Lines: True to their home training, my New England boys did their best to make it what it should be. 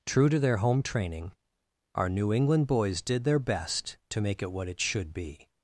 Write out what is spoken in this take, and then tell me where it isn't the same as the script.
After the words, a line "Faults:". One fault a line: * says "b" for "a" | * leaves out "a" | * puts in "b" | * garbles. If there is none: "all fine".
True to their home training, our New England boys did their best to make it what it should be.
Faults:
* says "our" for "my"